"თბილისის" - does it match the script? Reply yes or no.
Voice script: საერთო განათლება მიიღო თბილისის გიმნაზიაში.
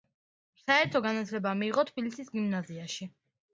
yes